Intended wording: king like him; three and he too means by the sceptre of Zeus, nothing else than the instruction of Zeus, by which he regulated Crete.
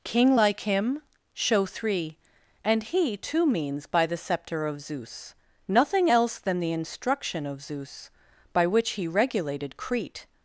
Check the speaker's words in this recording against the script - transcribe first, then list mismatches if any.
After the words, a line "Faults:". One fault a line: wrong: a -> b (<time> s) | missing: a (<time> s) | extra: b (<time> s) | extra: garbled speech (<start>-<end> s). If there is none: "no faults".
king like him; show three and he too means by the sceptre of Zeus, nothing else than the instruction of Zeus, by which he regulated Crete.
Faults:
extra: show (1.3 s)